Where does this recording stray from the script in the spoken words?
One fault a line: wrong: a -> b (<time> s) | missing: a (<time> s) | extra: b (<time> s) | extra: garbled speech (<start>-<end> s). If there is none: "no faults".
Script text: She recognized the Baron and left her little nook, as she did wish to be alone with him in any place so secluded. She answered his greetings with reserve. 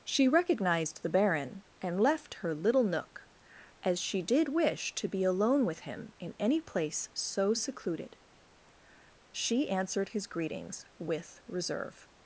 no faults